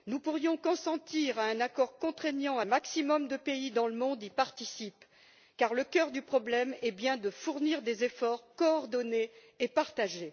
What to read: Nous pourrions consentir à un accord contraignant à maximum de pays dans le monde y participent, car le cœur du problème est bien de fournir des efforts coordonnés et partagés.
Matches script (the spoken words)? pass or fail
pass